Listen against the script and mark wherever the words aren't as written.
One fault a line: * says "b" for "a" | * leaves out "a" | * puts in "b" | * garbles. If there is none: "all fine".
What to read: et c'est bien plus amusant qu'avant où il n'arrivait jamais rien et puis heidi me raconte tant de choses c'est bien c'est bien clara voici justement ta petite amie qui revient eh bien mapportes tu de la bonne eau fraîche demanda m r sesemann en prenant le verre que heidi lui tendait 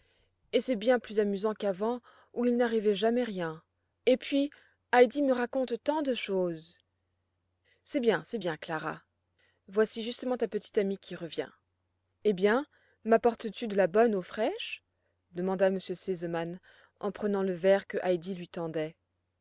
all fine